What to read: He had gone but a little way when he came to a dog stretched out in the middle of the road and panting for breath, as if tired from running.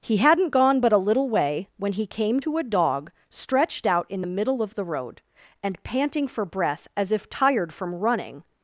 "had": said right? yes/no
no